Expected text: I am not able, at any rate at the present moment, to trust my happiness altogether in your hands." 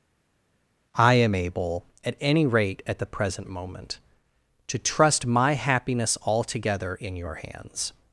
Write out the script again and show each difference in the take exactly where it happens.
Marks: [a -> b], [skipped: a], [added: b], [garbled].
I am [skipped: not] able, at any rate at the present moment, to trust my happiness altogether in your hands."